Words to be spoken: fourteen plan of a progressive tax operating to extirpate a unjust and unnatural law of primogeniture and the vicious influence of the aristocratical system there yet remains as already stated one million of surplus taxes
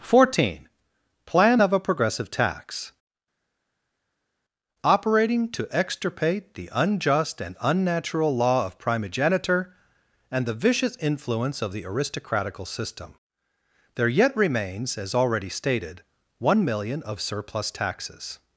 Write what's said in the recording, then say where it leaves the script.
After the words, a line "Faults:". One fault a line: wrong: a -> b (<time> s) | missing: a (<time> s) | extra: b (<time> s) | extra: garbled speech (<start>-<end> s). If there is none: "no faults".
fourteen plan of a progressive tax operating to extirpate the unjust and unnatural law of primogeniture and the vicious influence of the aristocratical system there yet remains as already stated one million of surplus taxes
Faults:
wrong: a -> the (6.5 s)